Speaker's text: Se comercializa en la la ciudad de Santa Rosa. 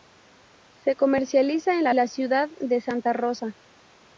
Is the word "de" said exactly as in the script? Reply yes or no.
yes